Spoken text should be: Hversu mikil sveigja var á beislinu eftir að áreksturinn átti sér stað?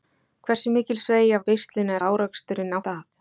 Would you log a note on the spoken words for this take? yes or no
yes